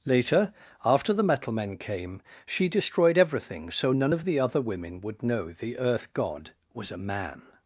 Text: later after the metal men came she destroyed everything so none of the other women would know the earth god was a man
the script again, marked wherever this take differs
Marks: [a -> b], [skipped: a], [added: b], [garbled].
later after the metal men came she destroyed everything so none of the other women would know the earth god was a man